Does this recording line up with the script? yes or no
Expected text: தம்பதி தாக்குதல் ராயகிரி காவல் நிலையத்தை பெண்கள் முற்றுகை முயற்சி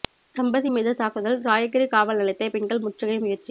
no